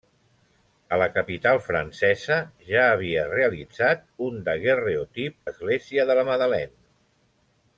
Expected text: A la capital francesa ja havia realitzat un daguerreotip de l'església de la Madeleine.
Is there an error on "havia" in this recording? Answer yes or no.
no